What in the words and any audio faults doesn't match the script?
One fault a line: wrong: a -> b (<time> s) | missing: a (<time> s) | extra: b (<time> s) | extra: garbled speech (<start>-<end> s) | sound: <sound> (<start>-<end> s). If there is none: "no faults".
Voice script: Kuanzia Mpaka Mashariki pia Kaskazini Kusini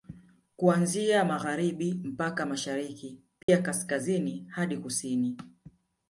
extra: Magharibi (1.2 s)
sound: dropout (3.4-3.5 s)
extra: hadi (4.5 s)